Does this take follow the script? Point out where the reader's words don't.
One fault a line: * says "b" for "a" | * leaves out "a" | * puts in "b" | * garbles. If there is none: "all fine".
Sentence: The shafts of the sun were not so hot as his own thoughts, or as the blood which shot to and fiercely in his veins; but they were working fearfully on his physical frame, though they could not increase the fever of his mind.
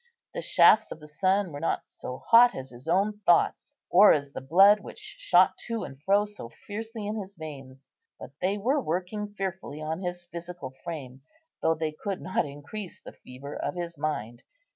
* puts in "fro so"